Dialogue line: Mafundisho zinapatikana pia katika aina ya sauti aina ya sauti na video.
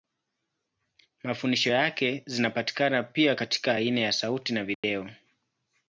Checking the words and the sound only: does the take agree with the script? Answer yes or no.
no